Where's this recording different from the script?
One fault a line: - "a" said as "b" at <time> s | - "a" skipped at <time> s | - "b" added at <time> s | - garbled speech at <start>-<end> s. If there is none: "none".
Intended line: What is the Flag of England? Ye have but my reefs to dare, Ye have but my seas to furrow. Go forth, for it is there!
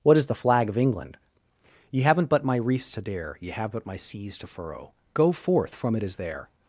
- "have" said as "haven't" at 2.0 s
- "for" said as "from" at 5.7 s